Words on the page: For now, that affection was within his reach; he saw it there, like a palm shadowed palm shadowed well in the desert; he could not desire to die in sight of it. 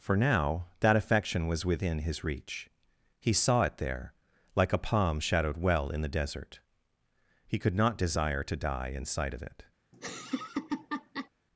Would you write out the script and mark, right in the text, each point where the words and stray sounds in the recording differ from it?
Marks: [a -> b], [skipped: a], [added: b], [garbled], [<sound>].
For now, that affection was within his reach; he saw it there, like a palm shadowed [skipped: palm shadowed] well in the desert; he could not desire to die in sight of it. [laugh]